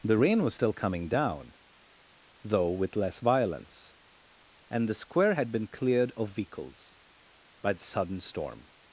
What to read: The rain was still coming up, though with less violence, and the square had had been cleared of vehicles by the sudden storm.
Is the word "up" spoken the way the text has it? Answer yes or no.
no